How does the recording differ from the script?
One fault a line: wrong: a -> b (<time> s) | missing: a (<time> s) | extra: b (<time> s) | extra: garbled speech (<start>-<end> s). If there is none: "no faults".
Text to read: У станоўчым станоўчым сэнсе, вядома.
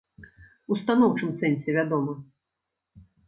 missing: станоўчым (1.3 s)